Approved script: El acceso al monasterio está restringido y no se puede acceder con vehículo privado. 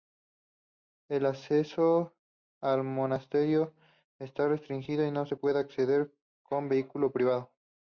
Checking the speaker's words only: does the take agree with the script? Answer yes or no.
yes